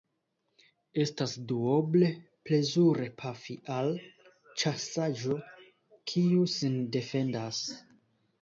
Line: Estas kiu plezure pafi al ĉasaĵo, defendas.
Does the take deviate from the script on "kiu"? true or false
true